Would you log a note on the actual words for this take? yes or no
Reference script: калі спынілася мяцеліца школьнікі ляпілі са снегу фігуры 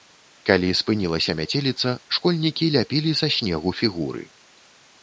no